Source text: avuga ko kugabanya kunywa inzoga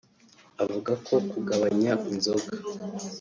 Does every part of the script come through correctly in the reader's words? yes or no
no